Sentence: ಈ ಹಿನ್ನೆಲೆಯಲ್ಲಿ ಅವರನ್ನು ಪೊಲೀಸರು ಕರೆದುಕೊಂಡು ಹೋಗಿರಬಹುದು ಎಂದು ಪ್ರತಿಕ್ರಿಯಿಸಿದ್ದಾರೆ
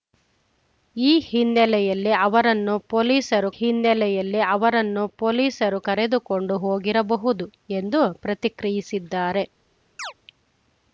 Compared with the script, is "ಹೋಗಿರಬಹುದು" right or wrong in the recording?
right